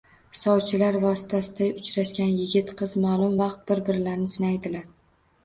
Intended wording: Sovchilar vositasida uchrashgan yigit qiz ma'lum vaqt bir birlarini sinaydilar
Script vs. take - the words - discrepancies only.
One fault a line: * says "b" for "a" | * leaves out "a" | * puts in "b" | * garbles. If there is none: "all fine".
all fine